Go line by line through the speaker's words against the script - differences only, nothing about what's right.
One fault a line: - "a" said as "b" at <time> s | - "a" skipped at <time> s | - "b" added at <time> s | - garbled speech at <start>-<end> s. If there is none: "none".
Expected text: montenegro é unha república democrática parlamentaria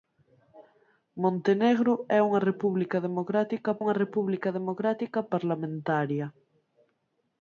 - "unha república democrática" added at 3.8 s